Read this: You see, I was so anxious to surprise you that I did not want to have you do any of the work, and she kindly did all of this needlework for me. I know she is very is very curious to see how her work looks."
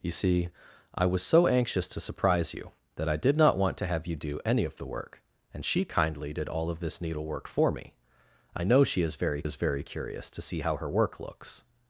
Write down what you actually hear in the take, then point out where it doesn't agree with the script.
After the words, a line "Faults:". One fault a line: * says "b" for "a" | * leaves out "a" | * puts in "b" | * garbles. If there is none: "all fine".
You see, I was so anxious to surprise you that I did not want to have you do any of the work, and she kindly did all of this needlework for me. I know she is very is very curious to see how her work looks."
Faults:
all fine